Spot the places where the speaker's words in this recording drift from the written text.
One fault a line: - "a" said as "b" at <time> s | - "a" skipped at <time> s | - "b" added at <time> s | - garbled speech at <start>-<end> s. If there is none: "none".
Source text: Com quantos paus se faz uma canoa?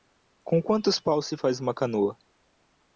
none